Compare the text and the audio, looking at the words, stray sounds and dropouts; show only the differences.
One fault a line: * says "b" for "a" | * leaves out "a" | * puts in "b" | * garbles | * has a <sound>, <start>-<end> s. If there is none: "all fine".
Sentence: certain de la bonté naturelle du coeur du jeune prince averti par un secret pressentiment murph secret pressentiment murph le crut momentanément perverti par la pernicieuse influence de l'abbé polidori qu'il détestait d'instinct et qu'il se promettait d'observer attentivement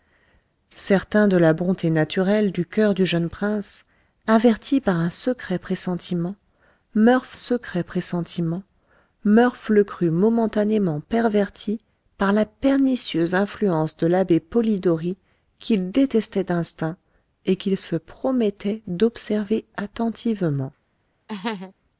* has a laugh, 21.3-21.7 s